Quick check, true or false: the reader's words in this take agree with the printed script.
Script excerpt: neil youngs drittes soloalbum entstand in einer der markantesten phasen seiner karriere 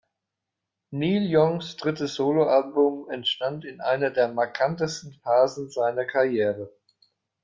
true